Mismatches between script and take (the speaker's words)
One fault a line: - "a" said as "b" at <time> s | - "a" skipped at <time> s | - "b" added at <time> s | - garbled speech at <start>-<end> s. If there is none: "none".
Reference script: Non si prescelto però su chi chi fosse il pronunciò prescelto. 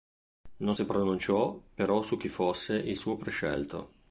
- "prescelto" said as "pronunciò" at 0.8 s
- "chi" skipped at 2.3 s
- "pronunciò" said as "suo" at 3.0 s